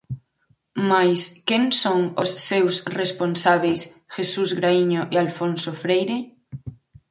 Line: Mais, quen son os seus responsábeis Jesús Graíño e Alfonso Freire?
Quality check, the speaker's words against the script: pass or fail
pass